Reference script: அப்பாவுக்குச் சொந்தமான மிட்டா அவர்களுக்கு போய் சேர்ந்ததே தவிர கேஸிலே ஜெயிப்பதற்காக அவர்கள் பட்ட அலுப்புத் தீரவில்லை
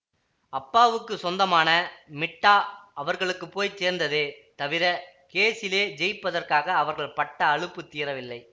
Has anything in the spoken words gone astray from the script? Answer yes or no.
no